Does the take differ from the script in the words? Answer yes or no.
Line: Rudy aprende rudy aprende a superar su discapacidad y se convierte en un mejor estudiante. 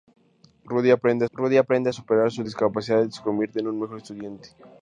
no